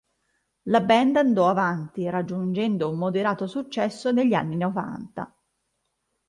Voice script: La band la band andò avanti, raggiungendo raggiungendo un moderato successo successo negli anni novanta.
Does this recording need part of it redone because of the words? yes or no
yes